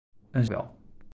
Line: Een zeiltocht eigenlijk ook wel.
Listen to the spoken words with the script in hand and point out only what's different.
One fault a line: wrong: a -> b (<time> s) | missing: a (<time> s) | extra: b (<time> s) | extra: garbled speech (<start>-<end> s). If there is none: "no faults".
missing: zeiltocht eigenlijk ook (0.5 s)